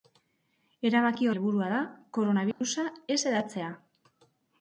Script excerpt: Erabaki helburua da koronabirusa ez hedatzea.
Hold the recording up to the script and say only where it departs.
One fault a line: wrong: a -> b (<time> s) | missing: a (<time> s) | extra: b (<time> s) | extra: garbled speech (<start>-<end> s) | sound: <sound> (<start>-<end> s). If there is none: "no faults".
sound: dropout (2.5-2.6 s)